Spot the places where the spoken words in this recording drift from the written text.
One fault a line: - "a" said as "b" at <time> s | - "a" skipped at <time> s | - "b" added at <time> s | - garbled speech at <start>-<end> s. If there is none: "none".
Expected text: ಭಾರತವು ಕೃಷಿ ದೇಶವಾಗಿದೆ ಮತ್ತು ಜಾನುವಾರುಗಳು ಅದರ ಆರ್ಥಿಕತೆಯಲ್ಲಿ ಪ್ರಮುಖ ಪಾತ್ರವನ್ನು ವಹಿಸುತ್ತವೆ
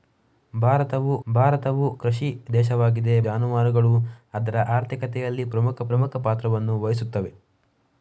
- "ಭಾರತವು" added at 1.3 s
- "ಮತ್ತು" skipped at 3.2 s
- "ಪ್ರಮುಖ" added at 5.9 s